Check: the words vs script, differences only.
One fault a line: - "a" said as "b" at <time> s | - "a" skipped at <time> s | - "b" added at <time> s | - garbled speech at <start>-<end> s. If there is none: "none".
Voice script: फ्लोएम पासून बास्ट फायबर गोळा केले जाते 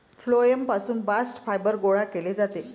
none